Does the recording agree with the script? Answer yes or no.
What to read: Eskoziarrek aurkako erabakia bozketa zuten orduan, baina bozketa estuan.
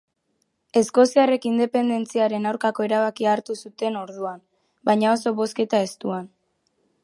no